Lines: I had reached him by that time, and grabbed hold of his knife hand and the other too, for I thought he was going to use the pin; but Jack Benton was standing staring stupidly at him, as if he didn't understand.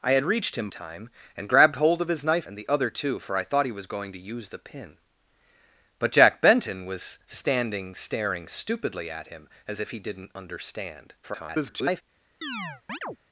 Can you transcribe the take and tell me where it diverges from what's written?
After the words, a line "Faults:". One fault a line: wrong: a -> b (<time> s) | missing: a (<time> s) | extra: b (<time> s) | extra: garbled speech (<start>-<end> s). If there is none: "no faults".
I had reached him time, and grabbed hold of his knife and the other too, for I thought he was going to use the pin; but Jack Benton was standing staring stupidly at him, as if he didn't understand. [garbled]
Faults:
missing: by that (0.7 s)
missing: hand (2.5 s)
extra: garbled speech (11.2-12.0 s)